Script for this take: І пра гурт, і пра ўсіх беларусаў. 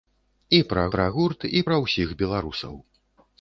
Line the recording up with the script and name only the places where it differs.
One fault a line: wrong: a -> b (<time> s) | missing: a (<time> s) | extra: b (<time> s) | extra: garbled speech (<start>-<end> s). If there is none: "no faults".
extra: пра (0.9 s)